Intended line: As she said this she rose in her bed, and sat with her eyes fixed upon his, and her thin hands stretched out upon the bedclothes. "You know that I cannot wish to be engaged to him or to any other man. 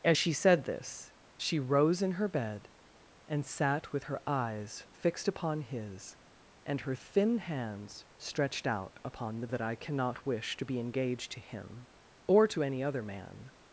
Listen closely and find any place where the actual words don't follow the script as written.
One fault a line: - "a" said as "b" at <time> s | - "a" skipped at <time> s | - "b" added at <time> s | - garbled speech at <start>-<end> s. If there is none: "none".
- "bedclothes You know" skipped at 9.5 s